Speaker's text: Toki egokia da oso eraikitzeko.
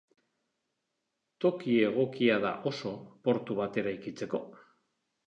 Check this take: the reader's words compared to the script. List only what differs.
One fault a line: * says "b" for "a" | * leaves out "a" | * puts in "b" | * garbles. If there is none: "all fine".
* puts in "portu bat"